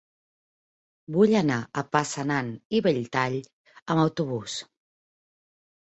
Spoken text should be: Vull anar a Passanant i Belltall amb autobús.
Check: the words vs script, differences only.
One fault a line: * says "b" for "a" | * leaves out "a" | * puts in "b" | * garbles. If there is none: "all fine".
all fine